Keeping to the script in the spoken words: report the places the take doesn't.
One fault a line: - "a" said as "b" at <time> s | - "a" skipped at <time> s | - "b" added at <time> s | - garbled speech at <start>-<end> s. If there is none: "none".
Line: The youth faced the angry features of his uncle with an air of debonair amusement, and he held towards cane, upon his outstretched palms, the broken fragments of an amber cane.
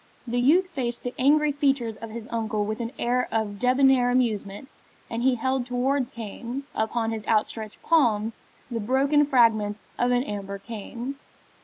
none